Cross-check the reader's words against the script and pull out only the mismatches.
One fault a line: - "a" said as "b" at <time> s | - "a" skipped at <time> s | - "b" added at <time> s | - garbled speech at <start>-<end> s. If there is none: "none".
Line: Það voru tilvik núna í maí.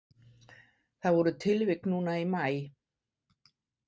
none